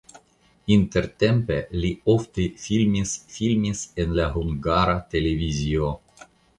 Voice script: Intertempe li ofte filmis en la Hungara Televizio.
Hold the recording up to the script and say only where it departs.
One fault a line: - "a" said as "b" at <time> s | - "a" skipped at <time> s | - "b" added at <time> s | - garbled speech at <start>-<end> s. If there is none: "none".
- "filmis" added at 3.3 s